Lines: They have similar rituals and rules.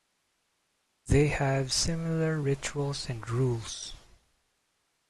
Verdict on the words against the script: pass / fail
pass